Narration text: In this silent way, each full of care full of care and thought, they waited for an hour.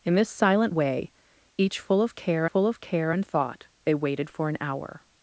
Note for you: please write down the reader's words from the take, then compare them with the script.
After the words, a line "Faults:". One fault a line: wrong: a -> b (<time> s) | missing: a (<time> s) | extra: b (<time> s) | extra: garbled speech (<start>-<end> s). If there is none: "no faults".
In this silent way, each full of care full of care and thought, they waited for an hour.
Faults:
no faults